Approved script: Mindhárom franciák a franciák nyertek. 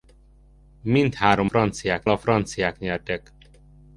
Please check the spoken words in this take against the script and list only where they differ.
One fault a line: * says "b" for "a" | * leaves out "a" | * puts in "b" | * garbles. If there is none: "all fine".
all fine